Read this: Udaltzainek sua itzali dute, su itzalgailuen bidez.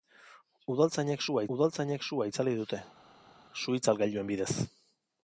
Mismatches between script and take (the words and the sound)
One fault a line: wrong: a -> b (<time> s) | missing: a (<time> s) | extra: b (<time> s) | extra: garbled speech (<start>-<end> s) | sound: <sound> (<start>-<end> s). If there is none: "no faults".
extra: udaltzainek sua (1.6 s)